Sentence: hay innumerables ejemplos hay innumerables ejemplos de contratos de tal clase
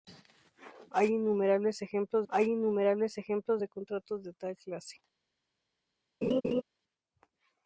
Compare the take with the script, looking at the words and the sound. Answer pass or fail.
fail